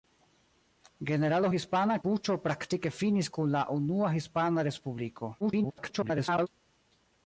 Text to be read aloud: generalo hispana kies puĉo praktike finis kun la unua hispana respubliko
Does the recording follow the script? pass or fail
fail